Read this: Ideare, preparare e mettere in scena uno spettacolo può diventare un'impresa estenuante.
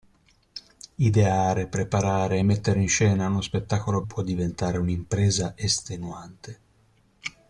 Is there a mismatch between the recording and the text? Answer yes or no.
no